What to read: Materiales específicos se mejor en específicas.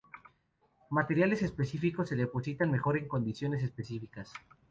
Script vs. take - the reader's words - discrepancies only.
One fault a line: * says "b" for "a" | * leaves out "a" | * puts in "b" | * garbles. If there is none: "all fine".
* puts in "depositan"
* puts in "condiciones"